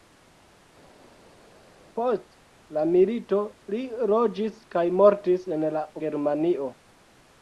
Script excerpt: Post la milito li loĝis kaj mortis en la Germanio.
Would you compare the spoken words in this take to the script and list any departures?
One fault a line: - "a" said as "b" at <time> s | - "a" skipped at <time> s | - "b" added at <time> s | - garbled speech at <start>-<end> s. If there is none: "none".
none